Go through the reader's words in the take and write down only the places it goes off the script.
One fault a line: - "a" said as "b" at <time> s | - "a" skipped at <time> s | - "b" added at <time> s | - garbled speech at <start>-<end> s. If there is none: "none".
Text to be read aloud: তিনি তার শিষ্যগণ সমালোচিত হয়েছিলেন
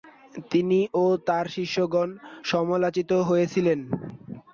- "ও" added at 0.9 s